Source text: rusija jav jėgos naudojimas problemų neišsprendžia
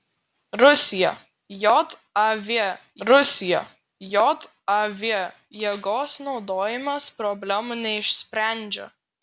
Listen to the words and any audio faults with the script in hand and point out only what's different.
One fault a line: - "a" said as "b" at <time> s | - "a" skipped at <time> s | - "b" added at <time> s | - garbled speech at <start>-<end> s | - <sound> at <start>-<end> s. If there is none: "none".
- "rusija jav" added at 3.1 s